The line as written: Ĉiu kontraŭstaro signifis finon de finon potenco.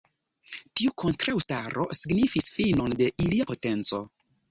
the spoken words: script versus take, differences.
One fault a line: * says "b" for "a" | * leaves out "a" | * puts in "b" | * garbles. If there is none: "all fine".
* says "Tiu" for "Ĉiu"
* says "ilia" for "finon"